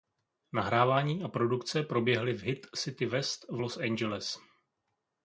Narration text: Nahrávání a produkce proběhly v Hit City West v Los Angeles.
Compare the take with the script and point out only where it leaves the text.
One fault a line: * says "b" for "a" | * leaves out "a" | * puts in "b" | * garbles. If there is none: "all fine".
all fine